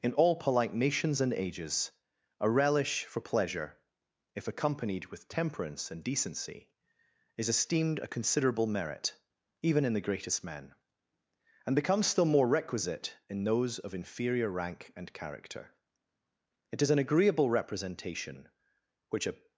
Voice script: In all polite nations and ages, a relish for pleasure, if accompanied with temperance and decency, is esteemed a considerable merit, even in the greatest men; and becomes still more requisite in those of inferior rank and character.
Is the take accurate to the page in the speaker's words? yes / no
no